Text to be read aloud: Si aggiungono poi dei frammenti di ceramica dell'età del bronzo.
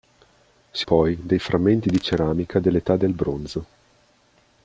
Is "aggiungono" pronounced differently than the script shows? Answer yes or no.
yes